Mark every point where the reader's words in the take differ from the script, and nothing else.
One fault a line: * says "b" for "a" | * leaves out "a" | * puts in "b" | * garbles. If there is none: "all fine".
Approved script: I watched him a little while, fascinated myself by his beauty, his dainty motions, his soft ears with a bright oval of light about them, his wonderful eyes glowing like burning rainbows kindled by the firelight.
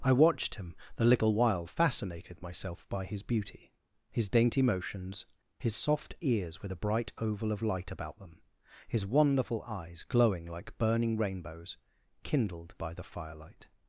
* says "the" for "a"